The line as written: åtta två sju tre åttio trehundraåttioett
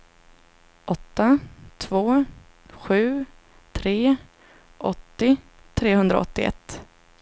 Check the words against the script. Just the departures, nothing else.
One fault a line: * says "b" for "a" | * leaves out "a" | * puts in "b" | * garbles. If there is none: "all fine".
all fine